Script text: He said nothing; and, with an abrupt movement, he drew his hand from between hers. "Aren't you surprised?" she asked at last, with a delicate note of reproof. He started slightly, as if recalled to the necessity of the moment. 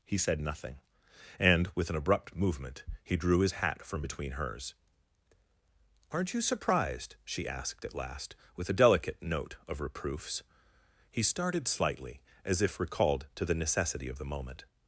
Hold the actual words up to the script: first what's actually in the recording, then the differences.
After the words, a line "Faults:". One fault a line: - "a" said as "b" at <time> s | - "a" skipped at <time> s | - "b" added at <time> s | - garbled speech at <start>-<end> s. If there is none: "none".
He said nothing; and, with an abrupt movement, he drew his hat from between hers. "Aren't you surprised?" she asked at last, with a delicate note of reproofs. He started slightly, as if recalled to the necessity of the moment.
Faults:
- "hand" said as "hat" at 3.5 s
- "reproof" said as "reproofs" at 9.8 s